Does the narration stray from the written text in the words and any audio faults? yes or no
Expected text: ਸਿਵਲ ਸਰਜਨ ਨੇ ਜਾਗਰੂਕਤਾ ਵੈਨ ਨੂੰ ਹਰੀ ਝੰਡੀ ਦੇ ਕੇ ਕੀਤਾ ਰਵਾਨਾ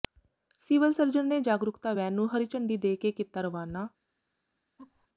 yes